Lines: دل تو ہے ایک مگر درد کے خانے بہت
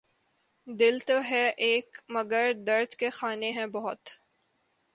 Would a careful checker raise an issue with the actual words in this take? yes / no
yes